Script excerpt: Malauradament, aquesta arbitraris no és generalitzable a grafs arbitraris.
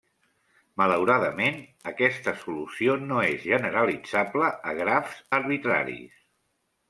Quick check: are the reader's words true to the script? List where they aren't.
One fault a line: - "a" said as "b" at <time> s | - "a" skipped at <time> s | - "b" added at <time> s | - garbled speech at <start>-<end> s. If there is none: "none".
- "arbitraris" said as "solució" at 2.5 s